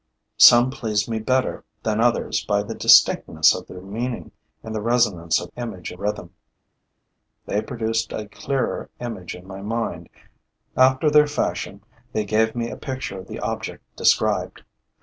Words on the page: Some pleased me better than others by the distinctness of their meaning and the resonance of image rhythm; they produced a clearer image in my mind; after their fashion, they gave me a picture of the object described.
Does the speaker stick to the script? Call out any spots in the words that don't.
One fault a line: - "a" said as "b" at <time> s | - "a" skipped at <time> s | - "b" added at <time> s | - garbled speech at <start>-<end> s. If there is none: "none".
none